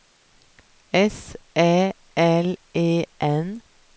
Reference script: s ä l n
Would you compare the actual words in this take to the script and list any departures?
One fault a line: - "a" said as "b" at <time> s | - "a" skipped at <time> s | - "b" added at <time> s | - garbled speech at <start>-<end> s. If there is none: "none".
- "e" added at 2.7 s